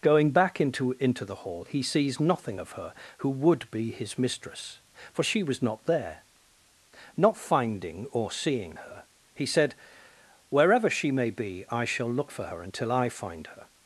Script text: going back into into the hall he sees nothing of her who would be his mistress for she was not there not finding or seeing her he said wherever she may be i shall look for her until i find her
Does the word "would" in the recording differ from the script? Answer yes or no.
no